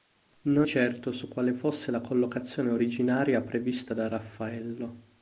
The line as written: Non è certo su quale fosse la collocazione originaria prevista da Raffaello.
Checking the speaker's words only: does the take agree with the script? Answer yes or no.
no